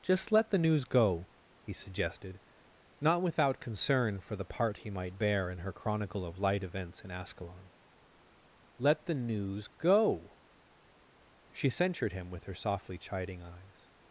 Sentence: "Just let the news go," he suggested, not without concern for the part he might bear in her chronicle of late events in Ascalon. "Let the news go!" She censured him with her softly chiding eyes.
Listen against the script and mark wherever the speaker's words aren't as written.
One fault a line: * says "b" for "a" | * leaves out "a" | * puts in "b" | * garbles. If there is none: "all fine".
* says "light" for "late"